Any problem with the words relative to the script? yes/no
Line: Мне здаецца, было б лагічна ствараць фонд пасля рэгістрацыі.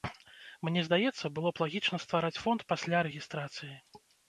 no